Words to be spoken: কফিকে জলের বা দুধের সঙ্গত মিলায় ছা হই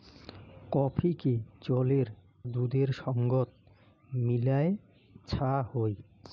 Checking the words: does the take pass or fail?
fail